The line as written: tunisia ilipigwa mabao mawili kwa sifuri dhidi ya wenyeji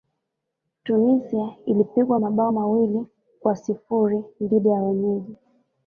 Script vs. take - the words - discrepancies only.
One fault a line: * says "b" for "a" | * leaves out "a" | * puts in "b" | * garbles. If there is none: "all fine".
all fine